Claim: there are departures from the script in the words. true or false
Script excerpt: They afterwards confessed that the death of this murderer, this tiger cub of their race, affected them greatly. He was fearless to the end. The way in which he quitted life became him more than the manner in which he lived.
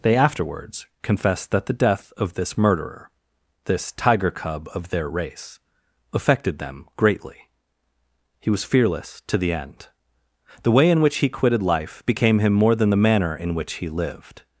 false